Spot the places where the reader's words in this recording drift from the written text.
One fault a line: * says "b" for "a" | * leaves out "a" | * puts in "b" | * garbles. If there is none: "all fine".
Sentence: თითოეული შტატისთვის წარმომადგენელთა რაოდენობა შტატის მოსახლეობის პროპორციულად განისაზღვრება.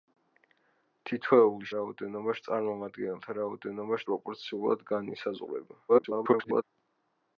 * says "რაოდენობა" for "შტატისთვის"
* leaves out "შტატის მოსახლეობის"
* garbles